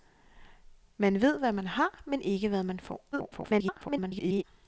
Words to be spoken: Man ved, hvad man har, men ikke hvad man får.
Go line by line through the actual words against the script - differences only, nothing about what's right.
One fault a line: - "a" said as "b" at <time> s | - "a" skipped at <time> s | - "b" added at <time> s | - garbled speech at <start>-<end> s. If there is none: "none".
- garbled speech at 3.1-4.4 s